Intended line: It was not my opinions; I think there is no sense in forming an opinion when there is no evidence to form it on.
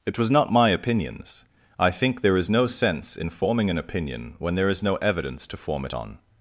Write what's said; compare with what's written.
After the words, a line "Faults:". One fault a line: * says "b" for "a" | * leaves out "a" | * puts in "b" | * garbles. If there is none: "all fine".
It was not my opinions; I think there is no sense in forming an opinion when there is no evidence to form it on.
Faults:
all fine